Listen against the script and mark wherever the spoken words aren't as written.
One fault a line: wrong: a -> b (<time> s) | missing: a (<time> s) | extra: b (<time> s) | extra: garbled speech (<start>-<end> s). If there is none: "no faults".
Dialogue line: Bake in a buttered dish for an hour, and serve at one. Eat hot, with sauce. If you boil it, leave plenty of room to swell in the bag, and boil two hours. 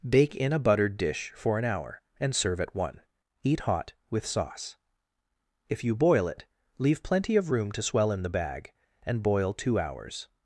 no faults